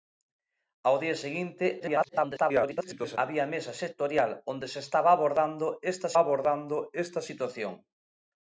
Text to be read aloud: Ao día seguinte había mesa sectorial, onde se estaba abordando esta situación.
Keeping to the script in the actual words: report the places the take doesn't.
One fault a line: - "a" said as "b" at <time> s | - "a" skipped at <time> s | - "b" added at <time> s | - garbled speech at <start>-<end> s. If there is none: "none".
- garbled speech at 1.8-3.2 s
- "abordando esta" added at 6.2 s